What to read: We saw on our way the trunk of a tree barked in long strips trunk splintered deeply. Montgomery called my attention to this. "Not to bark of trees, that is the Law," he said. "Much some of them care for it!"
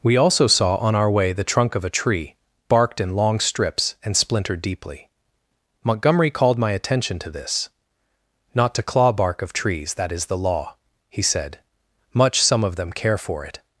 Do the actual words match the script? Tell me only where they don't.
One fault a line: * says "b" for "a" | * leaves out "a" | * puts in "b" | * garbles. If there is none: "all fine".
* puts in "also"
* says "and" for "trunk"
* puts in "claw"